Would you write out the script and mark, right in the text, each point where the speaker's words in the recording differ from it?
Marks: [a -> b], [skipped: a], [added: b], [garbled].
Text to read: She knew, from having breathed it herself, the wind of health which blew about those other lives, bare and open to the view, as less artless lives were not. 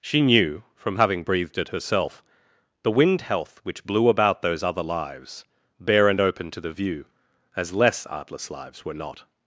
She knew, from having breathed it herself, the wind [skipped: of] health which blew about those other lives, bare and open to the view, as less artless lives were not.